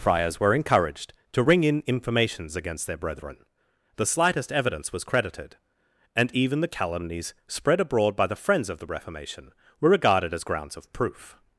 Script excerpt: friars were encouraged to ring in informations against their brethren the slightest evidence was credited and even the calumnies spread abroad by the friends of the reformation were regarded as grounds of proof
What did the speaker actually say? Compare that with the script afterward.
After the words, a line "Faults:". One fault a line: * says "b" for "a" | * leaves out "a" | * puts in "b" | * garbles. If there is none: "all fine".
friars were encouraged to ring in informations against their brethren the slightest evidence was credited and even the calumnies spread abroad by the friends of the reformation were regarded as grounds of proof
Faults:
all fine